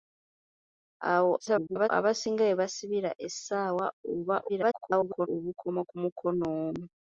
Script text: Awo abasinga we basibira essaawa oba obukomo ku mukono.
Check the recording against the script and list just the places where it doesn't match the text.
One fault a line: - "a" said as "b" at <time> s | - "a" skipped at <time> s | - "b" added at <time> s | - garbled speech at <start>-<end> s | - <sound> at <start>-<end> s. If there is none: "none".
- garbled speech at 1.4-1.9 s
- garbled speech at 4.5-5.3 s